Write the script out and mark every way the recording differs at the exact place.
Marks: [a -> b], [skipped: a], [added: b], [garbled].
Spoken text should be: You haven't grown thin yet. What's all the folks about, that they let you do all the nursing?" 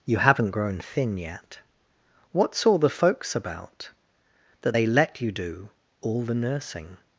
You haven't grown thin yet. What's all the folks about, that they let you do all the nursing?"